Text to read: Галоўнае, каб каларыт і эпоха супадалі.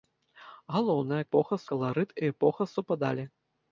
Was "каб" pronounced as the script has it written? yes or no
no